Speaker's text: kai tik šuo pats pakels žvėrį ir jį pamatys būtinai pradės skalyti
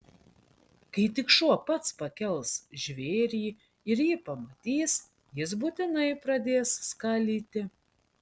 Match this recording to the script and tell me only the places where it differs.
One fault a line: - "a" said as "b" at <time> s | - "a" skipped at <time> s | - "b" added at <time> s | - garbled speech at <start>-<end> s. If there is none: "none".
- "jis" added at 5.4 s